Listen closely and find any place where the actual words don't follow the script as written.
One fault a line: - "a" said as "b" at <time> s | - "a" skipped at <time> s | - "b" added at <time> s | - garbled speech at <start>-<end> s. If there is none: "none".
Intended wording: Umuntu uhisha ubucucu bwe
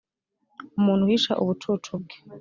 none